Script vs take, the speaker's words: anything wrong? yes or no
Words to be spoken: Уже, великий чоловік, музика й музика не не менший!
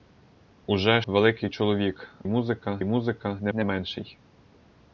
no